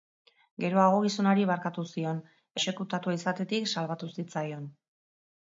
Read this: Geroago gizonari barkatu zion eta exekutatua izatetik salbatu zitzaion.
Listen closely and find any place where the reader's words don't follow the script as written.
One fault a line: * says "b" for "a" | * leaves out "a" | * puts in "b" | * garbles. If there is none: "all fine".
* leaves out "eta"